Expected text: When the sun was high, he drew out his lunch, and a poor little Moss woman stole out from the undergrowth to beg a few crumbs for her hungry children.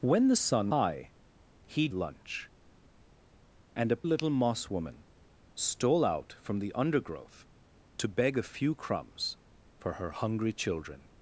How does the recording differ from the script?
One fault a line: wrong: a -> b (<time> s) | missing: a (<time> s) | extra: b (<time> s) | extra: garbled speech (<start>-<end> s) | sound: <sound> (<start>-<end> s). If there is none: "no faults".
missing: was (0.7 s)
missing: drew out his (1.9 s)
missing: poor (4.0 s)